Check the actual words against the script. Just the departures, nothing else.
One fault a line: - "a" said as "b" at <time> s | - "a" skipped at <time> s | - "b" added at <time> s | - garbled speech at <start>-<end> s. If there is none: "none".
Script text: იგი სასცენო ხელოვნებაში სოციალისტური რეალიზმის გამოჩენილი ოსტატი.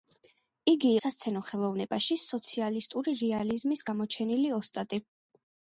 none